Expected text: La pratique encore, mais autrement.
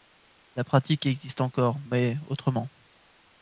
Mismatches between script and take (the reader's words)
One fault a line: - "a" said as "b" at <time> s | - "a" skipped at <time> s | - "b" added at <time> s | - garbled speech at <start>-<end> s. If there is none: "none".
- "existe" added at 1.1 s